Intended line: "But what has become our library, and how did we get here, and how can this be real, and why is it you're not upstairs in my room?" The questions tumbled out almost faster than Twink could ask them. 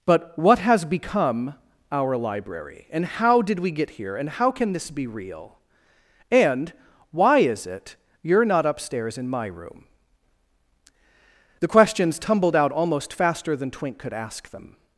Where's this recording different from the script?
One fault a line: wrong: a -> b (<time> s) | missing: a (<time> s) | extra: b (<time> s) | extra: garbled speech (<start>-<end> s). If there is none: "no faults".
no faults